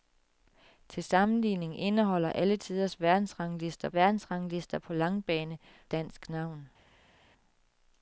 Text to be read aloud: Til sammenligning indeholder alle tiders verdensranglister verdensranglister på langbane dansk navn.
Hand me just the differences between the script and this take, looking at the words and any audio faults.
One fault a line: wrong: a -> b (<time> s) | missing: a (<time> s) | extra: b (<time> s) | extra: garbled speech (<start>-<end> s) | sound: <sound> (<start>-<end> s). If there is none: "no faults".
no faults